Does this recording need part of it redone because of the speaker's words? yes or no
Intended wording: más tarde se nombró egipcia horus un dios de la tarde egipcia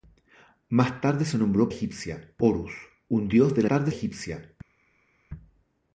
no